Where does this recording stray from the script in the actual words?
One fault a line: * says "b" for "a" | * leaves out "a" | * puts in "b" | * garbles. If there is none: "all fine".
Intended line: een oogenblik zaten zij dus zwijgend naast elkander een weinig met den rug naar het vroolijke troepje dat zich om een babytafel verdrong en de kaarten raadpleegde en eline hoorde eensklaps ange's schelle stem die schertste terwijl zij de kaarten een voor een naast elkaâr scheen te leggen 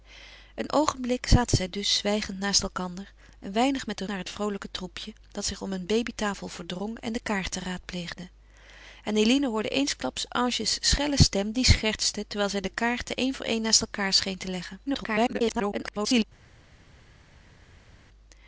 * leaves out "rug"
* garbles